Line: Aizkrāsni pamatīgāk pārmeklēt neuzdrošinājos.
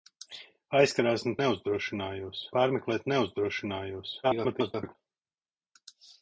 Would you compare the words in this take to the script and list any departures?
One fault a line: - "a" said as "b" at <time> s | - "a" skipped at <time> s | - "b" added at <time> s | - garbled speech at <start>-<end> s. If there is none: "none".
- "pamatīgāk" said as "neuzdrošinājos" at 1.4 s
- garbled speech at 4.2-5.0 s